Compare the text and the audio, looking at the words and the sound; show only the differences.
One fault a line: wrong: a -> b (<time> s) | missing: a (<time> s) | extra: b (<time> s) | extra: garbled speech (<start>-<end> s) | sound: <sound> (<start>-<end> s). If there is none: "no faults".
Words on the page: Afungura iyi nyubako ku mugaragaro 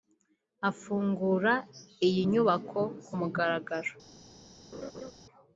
sound: laugh (4.7-5.1 s)